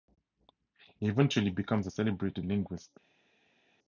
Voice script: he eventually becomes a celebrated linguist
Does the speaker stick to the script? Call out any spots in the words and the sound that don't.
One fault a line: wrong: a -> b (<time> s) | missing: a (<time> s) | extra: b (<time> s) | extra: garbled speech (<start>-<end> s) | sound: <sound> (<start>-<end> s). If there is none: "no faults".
no faults